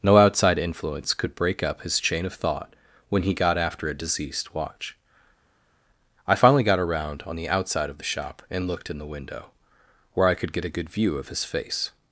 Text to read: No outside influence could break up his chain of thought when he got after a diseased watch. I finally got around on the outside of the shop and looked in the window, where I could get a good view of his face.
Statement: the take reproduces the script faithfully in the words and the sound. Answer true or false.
false